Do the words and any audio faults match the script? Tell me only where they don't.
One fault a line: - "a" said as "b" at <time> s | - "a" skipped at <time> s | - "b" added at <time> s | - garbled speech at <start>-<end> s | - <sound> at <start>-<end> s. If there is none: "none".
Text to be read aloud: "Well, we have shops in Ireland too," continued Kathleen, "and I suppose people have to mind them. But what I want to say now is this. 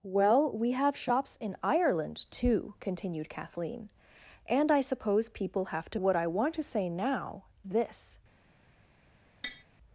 - "mind them But" skipped at 6.0 s
- "is" skipped at 7.5 s
- tap at 9.4-9.6 s